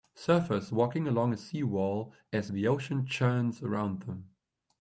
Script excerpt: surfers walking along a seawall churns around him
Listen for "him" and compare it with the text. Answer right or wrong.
wrong